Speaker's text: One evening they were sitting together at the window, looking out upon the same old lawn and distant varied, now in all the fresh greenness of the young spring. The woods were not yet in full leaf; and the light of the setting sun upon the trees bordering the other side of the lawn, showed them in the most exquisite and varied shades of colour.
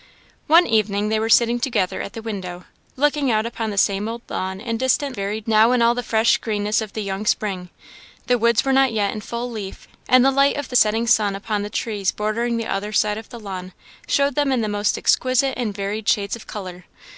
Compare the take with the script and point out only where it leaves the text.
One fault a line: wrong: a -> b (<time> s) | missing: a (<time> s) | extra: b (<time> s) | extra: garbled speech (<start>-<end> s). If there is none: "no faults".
no faults